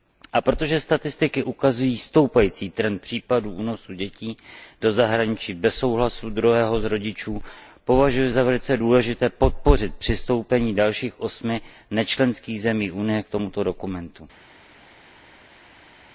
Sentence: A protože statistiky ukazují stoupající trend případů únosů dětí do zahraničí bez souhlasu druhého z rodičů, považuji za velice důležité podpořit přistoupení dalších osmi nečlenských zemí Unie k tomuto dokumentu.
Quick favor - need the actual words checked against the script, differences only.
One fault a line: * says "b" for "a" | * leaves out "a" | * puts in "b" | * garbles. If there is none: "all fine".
all fine